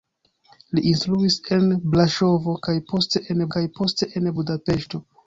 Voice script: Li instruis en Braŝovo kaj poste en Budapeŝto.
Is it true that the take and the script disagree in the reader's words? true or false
true